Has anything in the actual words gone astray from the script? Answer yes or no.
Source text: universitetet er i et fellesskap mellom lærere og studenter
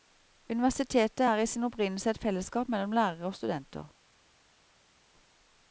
yes